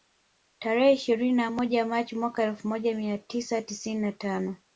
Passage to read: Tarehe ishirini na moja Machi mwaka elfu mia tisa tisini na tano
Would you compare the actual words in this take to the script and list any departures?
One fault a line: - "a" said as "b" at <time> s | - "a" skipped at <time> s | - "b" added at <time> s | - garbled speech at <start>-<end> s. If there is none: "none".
- "moja" added at 2.7 s